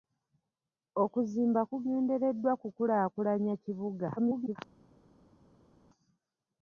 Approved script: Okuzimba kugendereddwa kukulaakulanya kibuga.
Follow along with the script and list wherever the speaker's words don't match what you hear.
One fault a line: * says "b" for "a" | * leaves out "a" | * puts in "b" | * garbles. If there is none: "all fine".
* garbles